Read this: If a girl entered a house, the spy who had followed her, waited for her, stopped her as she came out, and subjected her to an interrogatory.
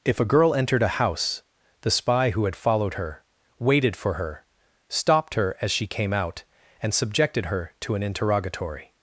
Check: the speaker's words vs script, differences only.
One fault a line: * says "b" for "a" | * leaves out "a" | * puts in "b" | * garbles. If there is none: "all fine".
all fine